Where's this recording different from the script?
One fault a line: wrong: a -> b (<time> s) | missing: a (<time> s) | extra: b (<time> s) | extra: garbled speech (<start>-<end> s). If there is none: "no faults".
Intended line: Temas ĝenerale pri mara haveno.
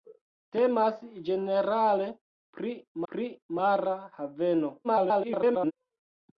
extra: pri (3.1 s)
extra: garbled speech (4.8-5.7 s)